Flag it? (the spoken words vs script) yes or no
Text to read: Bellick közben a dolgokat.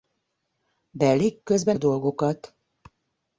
no